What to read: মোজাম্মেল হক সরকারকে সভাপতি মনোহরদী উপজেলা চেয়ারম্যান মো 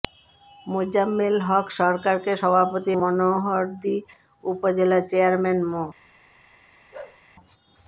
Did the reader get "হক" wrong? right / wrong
right